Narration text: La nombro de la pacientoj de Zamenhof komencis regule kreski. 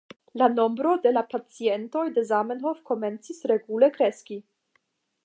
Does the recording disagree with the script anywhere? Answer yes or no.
no